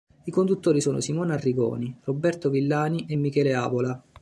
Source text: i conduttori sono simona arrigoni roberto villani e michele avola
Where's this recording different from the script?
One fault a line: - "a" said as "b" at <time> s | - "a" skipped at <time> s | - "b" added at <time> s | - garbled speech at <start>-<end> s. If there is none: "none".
none